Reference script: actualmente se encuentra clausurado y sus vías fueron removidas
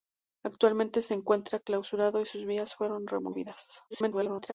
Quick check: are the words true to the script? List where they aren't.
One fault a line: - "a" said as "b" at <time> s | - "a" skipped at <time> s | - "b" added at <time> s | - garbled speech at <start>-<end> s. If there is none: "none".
- garbled speech at 3.9-4.5 s